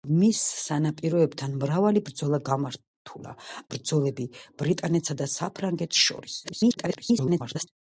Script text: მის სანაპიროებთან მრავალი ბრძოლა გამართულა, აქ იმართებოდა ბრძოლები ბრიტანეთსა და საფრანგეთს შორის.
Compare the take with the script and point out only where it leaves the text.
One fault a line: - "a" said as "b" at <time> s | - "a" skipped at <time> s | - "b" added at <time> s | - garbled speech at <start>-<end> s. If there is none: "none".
- "აქ იმართებოდა" skipped at 3.4 s
- garbled speech at 6.4-7.7 s